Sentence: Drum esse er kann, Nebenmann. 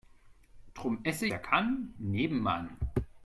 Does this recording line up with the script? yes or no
yes